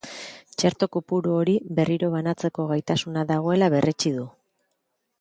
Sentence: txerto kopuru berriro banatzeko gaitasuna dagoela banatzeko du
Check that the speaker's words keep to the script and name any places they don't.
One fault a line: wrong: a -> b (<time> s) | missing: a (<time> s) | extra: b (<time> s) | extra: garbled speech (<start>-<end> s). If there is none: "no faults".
extra: hori (1.4 s)
wrong: banatzeko -> berretsi (3.8 s)